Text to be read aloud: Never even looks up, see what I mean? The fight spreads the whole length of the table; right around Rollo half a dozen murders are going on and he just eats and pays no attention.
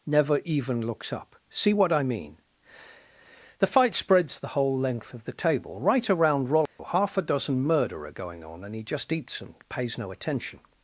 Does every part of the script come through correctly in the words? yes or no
no